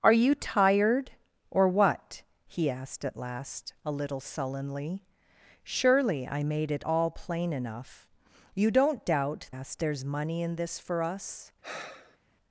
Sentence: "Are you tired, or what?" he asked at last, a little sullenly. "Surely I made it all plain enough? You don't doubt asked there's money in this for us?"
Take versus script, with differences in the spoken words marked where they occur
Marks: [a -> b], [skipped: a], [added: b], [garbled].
"Are you tired, or what?" he asked at last, a little sullenly. "Surely I made it all plain enough? You don't doubt asked there's money in this for us?"